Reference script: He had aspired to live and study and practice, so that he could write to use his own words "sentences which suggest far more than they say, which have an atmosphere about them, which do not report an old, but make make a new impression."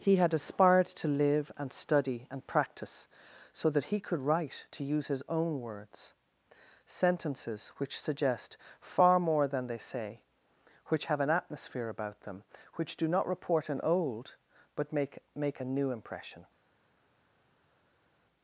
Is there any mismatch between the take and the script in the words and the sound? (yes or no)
no